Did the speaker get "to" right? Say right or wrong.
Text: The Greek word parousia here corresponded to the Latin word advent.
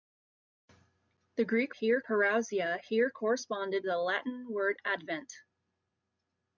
wrong